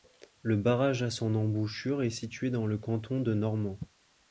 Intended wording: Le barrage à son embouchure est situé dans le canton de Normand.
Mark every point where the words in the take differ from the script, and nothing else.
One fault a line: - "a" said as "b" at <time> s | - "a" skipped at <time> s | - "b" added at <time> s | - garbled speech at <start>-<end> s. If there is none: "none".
none